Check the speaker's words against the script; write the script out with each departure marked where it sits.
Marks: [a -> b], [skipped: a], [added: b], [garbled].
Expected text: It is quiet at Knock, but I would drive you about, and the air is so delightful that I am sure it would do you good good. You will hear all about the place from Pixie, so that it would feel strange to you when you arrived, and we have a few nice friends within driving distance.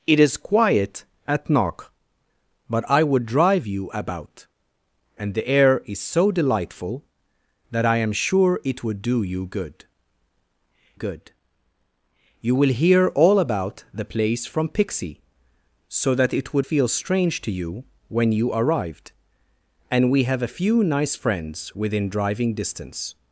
It is quiet at Knock, but I would drive you about, and the air is so delightful that I am sure it would do you good good. You will hear all about the place from Pixie, so that it would feel strange to you when you arrived, and we have a few nice friends within driving distance.